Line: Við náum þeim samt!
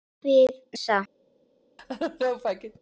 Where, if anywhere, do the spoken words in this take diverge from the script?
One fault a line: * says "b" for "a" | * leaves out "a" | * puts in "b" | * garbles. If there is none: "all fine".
* leaves out "náum þeim"